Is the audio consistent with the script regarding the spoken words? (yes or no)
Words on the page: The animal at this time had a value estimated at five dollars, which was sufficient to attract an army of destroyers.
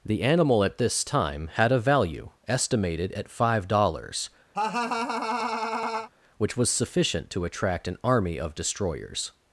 yes